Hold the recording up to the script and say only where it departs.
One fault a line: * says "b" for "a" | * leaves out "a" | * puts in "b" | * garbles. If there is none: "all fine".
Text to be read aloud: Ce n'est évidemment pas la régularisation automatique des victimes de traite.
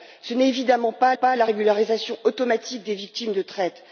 * puts in "pas"